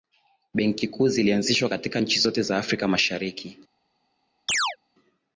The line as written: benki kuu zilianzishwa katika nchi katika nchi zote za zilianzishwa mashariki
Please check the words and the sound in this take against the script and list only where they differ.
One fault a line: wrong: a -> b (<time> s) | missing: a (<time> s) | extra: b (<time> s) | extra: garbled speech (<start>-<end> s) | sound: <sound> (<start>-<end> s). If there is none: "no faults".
missing: katika nchi (2.2 s)
wrong: zilianzishwa -> afrika (2.6 s)
sound: chirp (4.5-4.8 s)